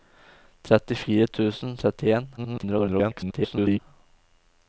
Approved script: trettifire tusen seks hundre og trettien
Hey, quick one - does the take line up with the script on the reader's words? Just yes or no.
no